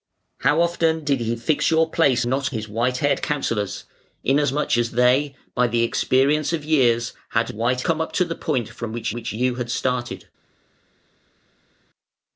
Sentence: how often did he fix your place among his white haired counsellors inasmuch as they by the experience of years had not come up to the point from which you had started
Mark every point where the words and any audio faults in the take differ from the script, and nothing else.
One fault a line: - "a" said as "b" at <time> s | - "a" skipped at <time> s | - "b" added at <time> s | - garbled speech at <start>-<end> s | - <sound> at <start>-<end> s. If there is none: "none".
- "among" said as "not" at 2.3 s
- "not" said as "white" at 7.5 s
- "which" added at 9.1 s